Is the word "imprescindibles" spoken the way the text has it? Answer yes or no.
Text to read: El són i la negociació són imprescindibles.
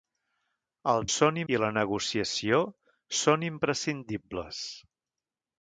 yes